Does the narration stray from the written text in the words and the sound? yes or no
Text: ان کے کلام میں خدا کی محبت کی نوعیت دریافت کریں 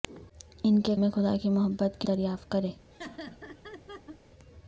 yes